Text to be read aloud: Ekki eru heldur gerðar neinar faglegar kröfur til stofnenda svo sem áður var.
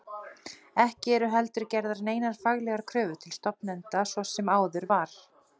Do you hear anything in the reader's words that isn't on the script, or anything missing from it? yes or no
no